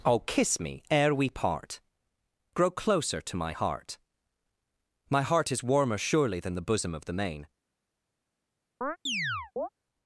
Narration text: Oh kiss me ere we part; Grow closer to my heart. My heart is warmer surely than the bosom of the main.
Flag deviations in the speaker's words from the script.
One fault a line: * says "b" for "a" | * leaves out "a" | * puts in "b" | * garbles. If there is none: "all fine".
all fine